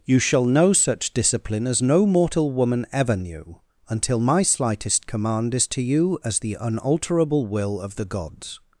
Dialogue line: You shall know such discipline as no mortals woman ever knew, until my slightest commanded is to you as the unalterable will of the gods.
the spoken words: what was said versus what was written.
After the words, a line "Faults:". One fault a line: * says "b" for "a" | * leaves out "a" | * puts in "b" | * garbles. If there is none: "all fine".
You shall know such discipline as no mortal woman ever knew, until my slightest command is to you as the unalterable will of the gods.
Faults:
* says "mortal" for "mortals"
* says "command" for "commanded"